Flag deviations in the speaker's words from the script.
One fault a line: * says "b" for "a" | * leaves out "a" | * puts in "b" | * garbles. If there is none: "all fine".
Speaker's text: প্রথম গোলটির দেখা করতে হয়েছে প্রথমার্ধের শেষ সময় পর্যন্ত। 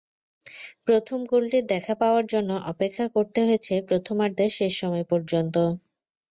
* puts in "পাওয়ার জন্য অপেক্ষা"